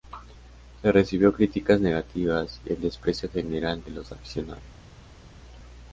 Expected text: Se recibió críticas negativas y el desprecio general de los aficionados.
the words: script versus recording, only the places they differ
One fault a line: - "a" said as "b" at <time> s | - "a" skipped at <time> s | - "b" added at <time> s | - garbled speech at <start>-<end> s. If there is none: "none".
none